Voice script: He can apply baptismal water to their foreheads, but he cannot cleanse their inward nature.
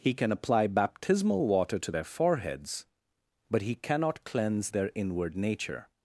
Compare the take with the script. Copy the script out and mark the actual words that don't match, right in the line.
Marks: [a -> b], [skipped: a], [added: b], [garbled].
He can apply baptismal water to their foreheads, but he cannot cleanse their inward nature.